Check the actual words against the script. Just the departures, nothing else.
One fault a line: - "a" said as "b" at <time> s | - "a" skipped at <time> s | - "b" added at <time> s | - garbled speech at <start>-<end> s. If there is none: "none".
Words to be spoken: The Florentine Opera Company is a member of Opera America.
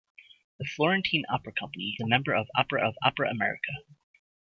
- "is" skipped at 2.0 s
- "of Opera" added at 2.8 s